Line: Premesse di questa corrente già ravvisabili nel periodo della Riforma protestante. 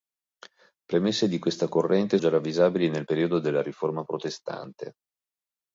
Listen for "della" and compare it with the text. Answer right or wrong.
right